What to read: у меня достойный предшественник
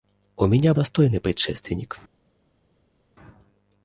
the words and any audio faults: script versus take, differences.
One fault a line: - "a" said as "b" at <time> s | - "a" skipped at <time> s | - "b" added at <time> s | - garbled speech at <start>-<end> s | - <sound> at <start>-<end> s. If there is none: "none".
none